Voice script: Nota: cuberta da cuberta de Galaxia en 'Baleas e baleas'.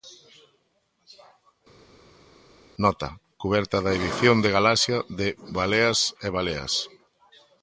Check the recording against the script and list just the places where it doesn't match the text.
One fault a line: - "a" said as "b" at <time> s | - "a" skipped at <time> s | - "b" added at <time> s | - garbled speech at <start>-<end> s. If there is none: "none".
- "cuberta" said as "edición" at 4.0 s
- "en" said as "de" at 5.2 s